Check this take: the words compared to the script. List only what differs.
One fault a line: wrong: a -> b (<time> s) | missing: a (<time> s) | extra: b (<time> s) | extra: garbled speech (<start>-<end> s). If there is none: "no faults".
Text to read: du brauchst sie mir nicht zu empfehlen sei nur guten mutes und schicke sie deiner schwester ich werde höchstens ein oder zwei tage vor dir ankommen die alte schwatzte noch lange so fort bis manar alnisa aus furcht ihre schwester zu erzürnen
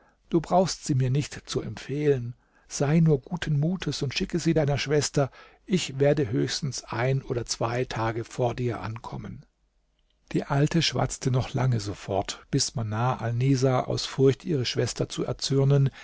no faults